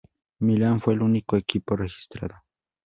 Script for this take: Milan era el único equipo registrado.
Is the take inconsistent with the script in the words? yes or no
yes